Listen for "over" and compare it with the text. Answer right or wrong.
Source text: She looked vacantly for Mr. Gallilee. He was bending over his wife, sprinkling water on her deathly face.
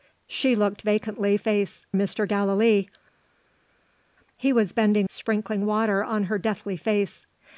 wrong